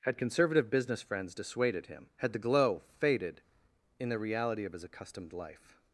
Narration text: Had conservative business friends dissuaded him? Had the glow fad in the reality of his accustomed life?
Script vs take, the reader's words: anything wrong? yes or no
yes